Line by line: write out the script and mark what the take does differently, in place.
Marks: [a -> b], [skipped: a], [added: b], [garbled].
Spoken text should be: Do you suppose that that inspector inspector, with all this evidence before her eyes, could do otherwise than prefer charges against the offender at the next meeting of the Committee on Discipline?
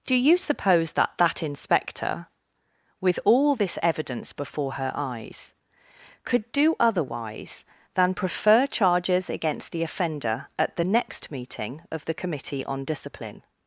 Do you suppose that that inspector [skipped: inspector,] with all this evidence before her eyes, could do otherwise than prefer charges against the offender at the next meeting of the Committee on Discipline?